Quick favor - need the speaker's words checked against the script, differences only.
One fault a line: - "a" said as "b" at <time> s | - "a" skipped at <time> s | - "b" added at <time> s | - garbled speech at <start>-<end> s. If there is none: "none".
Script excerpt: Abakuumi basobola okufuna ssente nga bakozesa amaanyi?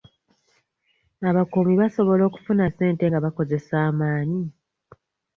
none